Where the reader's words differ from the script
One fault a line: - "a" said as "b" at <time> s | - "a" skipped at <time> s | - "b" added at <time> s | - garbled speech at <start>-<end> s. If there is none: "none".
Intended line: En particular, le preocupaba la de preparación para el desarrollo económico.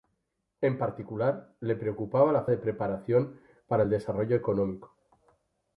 none